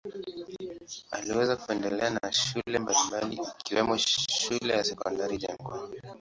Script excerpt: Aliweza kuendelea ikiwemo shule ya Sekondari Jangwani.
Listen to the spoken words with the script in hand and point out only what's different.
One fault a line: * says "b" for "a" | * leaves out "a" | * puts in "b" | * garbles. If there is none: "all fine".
* puts in "na shule mbalimbali"